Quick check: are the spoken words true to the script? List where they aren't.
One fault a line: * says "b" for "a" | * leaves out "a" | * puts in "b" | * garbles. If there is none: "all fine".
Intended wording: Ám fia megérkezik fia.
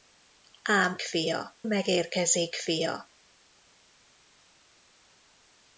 all fine